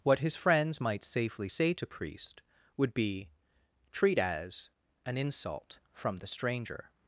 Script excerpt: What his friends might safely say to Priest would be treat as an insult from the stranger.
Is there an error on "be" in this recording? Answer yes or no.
no